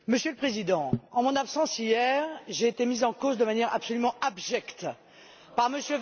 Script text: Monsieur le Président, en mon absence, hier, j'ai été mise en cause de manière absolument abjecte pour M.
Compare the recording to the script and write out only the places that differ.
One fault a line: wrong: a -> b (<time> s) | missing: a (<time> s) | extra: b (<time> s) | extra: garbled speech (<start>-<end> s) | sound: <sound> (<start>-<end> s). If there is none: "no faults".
wrong: pour -> par (5.5 s)